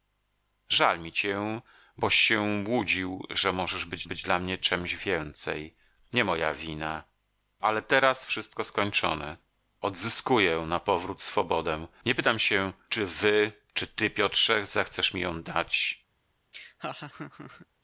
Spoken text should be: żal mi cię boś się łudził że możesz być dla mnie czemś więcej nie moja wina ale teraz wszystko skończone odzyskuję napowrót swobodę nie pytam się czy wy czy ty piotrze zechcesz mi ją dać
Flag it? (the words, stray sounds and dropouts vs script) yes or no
yes